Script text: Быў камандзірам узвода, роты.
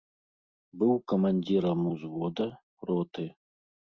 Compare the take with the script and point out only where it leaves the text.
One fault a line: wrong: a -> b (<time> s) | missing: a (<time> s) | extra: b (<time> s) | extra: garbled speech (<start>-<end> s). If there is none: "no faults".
no faults